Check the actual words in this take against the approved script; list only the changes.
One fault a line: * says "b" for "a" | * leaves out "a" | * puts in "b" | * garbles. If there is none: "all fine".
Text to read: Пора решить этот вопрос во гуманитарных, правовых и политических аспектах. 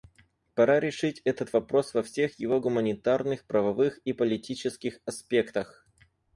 * puts in "всех его"